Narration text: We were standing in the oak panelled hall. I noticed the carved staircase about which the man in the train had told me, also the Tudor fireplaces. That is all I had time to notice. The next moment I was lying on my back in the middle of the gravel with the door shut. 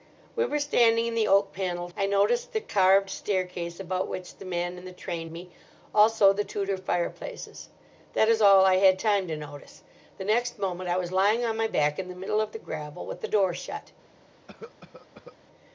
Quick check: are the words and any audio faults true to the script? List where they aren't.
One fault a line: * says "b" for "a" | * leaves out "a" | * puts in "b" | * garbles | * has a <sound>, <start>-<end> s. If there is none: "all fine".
* leaves out "hall"
* leaves out "had told"
* has a cough, 14.5-15.4 s